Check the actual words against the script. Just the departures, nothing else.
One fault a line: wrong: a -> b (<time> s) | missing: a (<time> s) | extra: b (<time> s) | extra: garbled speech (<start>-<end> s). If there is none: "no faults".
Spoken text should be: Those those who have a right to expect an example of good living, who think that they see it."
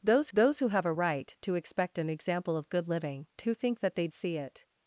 no faults